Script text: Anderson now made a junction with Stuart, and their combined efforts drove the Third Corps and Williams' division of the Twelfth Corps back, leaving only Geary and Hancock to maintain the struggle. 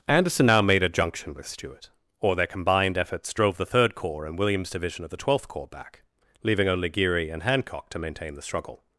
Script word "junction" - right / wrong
right